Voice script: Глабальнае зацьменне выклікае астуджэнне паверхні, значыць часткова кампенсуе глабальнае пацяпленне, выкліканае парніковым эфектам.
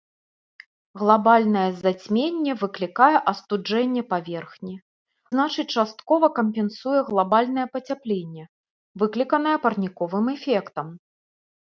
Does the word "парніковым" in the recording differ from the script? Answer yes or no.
no